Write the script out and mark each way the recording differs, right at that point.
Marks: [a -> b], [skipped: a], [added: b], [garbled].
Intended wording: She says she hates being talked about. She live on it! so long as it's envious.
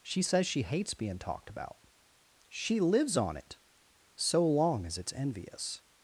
She says she hates being talked about. She [live -> lives] on it! so long as it's envious.